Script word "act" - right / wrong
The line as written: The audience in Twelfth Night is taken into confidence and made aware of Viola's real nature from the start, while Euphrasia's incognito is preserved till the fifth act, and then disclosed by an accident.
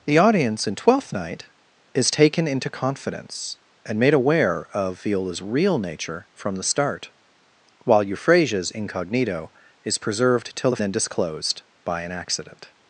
wrong